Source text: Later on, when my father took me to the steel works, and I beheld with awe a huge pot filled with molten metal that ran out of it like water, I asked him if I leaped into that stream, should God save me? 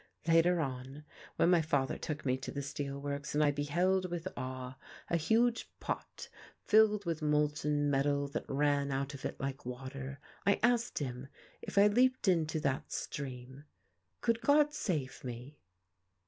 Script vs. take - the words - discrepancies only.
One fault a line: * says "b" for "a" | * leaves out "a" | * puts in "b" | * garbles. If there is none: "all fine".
* says "could" for "should"